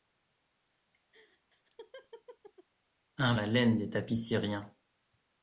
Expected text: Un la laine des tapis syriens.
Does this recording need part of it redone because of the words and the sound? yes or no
yes